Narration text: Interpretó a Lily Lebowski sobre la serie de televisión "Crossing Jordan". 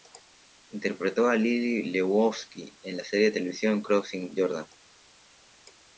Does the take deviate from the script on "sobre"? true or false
true